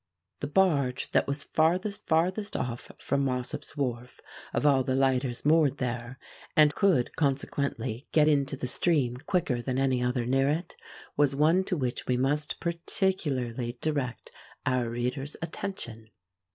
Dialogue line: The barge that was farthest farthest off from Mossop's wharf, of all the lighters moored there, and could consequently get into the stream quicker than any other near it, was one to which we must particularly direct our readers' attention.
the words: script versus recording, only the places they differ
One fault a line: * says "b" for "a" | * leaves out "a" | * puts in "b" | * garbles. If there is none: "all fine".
all fine